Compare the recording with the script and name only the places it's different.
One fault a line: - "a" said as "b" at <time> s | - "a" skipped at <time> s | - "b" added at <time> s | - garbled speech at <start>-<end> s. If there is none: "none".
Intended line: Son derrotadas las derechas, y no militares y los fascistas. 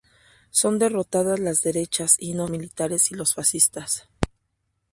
none